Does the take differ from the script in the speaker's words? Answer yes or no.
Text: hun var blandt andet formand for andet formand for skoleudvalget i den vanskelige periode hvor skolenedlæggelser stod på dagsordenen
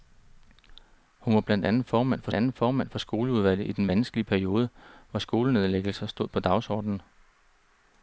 no